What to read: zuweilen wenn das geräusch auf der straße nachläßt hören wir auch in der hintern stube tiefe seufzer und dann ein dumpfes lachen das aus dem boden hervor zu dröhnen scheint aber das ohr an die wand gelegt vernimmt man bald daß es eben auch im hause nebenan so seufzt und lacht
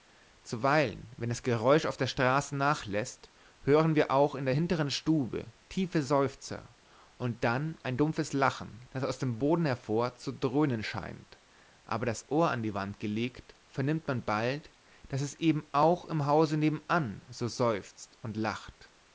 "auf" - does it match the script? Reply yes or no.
yes